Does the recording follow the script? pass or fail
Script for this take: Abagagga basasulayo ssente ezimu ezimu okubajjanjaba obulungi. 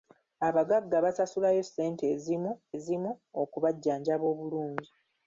pass